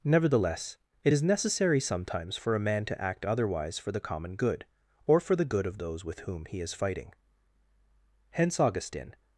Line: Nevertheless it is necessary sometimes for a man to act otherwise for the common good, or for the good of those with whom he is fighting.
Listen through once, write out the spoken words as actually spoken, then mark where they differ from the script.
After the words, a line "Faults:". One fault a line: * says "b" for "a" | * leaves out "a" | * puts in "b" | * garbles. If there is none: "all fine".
Nevertheless it is necessary sometimes for a man to act otherwise for the common good, or for the good of those with whom he is fighting. Hence Augustine
Faults:
* puts in "Hence Augustine"